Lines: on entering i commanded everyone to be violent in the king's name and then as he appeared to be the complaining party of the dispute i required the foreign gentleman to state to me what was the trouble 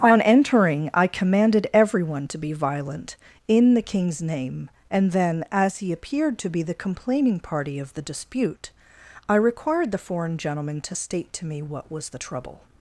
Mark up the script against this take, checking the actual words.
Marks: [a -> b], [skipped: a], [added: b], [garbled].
on entering i commanded everyone to be violent in the king's name and then as he appeared to be the complaining party of the dispute i required the foreign gentleman to state to me what was the trouble